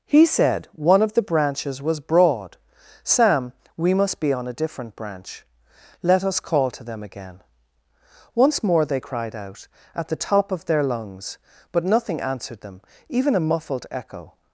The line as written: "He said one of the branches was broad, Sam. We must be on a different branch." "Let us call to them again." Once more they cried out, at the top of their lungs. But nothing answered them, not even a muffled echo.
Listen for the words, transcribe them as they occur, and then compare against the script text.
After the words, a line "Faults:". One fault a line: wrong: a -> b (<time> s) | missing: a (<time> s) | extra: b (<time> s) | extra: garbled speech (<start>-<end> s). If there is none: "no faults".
"He said one of the branches was broad, Sam. We must be on a different branch." "Let us call to them again." Once more they cried out, at the top of their lungs. But nothing answered them, even a muffled echo.
Faults:
missing: not (12.8 s)